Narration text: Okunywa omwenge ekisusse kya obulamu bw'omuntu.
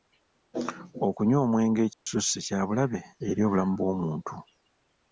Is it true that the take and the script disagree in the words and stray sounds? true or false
true